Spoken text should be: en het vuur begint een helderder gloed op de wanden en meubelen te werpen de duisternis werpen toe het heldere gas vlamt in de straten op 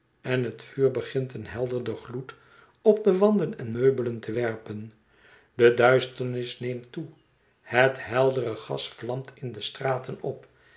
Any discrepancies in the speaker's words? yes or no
yes